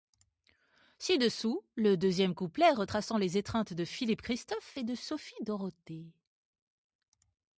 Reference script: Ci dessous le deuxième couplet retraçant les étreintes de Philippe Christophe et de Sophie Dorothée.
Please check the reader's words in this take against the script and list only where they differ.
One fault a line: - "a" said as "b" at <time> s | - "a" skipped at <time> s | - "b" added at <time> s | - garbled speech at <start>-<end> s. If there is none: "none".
none